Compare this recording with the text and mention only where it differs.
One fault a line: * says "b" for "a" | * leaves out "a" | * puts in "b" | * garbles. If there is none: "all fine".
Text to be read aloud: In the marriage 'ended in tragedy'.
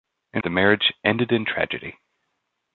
all fine